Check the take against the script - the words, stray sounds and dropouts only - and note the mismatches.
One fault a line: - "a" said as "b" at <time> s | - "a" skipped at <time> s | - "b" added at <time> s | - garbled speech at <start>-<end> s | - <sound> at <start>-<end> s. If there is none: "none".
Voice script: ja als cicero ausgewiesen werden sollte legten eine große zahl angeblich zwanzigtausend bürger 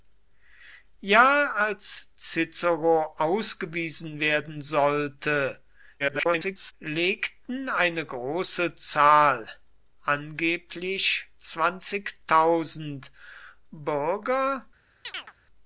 - garbled speech at 6.0-6.7 s
- chirp at 15.0-15.3 s